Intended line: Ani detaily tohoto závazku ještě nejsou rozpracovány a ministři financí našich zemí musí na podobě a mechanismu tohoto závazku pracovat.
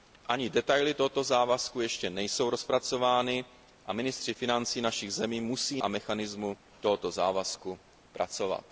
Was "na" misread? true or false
true